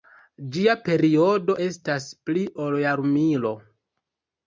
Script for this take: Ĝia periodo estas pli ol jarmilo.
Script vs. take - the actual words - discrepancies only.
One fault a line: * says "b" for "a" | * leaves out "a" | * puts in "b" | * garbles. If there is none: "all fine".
all fine